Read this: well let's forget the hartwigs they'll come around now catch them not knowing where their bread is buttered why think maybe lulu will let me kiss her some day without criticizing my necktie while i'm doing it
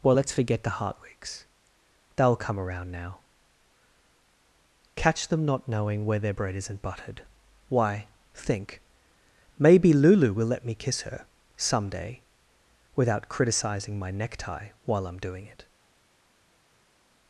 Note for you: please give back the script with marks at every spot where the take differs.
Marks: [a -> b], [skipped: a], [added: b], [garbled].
well let's forget the hartwigs they'll come around now catch them not knowing where their bread [is -> isn't] buttered why think maybe lulu will let me kiss her some day without criticizing my necktie while i'm doing it